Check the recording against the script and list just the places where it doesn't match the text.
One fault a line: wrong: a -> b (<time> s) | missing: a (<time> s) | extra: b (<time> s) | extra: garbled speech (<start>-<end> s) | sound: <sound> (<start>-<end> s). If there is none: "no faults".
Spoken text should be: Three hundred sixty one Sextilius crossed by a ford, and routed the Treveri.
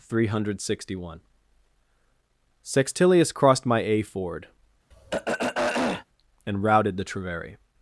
wrong: by -> my (3.7 s)
sound: throat clearing (4.9-6.1 s)